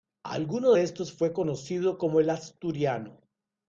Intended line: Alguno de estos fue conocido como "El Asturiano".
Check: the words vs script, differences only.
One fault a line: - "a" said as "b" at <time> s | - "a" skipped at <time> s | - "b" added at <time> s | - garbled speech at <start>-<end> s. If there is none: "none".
none